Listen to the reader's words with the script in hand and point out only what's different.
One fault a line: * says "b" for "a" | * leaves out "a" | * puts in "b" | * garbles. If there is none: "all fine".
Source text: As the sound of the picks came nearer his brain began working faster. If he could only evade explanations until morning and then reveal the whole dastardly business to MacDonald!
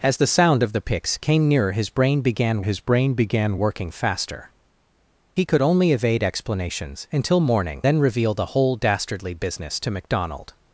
* puts in "his brain began"
* leaves out "If"
* leaves out "and"